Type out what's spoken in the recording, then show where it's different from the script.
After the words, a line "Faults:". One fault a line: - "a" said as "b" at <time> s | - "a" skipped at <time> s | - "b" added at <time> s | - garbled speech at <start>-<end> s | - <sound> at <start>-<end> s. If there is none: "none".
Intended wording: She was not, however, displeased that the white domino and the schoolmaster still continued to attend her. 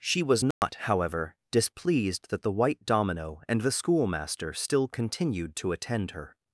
She was not, however, displeased that the white domino and the schoolmaster still continued to attend her.
Faults:
- dropout at 0.5-0.6 s